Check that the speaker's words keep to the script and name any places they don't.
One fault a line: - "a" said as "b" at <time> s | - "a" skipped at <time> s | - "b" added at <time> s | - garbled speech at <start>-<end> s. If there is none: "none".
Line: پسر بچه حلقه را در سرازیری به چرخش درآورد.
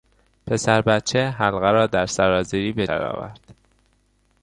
- "چرخش" skipped at 2.9 s